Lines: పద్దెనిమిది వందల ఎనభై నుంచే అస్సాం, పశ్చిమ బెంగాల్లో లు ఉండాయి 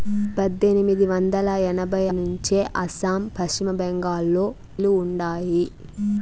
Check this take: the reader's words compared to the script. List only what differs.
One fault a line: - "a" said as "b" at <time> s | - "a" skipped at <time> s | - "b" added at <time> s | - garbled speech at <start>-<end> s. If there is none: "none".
none